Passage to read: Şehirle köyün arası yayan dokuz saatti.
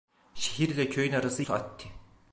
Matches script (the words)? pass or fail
fail